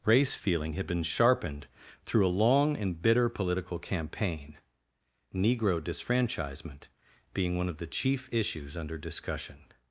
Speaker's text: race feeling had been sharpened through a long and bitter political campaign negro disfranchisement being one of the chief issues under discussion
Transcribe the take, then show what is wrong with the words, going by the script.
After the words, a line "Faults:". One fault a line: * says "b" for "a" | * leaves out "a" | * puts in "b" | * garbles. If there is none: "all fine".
race feeling had been sharpened through a long and bitter political campaign negro disfranchisement being one of the chief issues under discussion
Faults:
all fine